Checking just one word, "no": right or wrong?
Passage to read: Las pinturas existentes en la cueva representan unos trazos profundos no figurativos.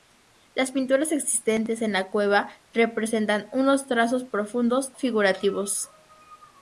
wrong